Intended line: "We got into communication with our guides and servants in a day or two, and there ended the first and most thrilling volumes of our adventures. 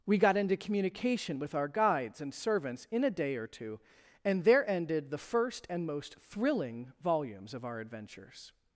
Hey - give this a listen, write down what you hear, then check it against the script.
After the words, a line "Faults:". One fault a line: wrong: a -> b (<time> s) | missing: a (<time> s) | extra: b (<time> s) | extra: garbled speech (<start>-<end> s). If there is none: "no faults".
"We got into communication with our guides and servants in a day or two, and there ended the first and most thrilling volumes of our adventures.
Faults:
no faults